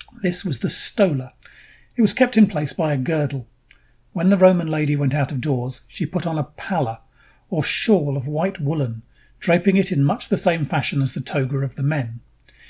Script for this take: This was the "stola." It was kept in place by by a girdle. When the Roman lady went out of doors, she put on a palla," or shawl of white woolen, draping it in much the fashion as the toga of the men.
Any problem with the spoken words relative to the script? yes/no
yes